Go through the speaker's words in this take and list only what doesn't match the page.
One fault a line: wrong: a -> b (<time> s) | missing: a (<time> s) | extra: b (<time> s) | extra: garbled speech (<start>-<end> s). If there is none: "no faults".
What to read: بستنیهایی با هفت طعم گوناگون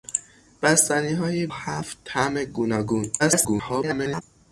missing: با (1.5 s)
extra: garbled speech (3.2-4.2 s)